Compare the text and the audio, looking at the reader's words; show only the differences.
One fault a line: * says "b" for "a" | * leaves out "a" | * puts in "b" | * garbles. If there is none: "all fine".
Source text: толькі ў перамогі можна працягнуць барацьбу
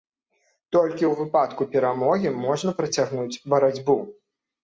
* puts in "выпадку"